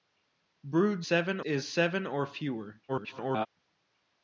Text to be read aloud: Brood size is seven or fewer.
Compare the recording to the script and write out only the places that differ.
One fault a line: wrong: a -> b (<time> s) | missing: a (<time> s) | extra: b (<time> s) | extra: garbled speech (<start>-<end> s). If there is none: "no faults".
wrong: size -> seven (1.0 s)
extra: garbled speech (2.9-3.5 s)